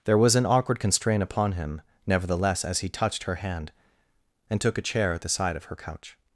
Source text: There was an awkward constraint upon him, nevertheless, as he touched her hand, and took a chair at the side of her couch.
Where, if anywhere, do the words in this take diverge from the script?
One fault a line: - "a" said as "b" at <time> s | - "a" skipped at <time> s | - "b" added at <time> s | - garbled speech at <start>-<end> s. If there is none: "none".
none